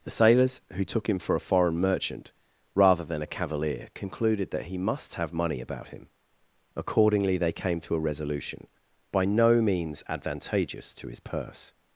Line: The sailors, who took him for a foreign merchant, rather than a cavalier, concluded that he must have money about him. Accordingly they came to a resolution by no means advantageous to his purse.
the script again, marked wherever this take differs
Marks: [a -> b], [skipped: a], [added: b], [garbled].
The sailors, who took him for a foreign merchant, rather than a cavalier, concluded that he must have money about him. Accordingly they came to a resolution by no means advantageous to his purse.